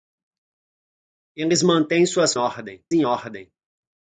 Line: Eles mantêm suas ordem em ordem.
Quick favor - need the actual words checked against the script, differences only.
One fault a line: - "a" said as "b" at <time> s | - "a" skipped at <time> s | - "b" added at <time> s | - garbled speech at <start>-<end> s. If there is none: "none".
none